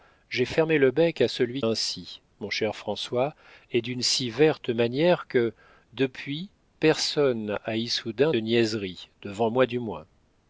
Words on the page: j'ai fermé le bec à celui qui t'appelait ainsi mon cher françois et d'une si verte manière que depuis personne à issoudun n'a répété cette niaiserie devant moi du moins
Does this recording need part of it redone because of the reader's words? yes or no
yes